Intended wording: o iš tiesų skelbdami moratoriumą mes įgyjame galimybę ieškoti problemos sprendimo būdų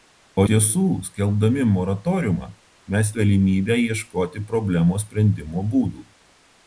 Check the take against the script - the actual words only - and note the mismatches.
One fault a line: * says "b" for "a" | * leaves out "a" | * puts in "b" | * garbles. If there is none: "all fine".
* leaves out "iš"
* leaves out "įgyjame"